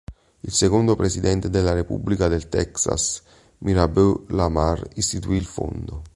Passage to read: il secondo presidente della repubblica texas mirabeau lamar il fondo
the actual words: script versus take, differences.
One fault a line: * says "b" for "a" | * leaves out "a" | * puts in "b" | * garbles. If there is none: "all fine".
* puts in "del"
* puts in "istituì"